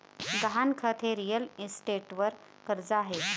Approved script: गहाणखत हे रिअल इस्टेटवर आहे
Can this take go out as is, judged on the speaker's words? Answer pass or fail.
fail